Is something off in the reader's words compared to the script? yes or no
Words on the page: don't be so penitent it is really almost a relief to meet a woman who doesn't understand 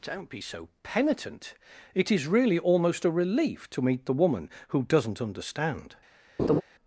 yes